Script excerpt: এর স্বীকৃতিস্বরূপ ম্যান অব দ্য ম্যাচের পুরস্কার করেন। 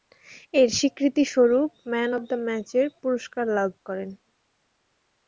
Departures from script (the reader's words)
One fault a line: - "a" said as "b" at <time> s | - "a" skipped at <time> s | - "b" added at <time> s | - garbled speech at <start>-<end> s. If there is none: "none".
- "লাভ" added at 3.6 s